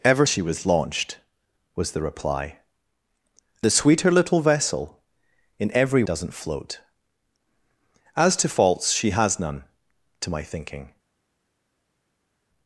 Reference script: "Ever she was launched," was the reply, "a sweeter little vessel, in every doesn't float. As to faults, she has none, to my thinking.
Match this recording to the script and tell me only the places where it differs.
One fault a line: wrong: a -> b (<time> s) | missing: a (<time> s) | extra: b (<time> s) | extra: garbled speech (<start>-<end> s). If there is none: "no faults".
no faults